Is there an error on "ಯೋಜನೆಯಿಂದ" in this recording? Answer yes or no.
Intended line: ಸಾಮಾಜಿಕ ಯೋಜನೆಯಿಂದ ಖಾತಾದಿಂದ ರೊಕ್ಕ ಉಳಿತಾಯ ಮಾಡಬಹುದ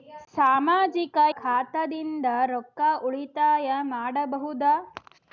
yes